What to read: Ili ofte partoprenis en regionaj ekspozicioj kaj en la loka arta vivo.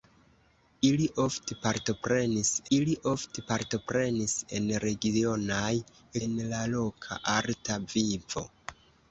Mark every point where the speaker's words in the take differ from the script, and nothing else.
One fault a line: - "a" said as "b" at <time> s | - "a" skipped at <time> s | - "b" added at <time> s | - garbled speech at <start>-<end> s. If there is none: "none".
- "ili ofte partoprenis" added at 2.8 s
- "ekspozicioj kaj" skipped at 5.7 s